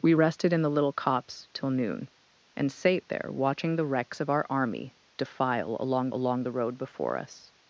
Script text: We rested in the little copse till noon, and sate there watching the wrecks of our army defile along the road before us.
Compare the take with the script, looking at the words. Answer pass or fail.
fail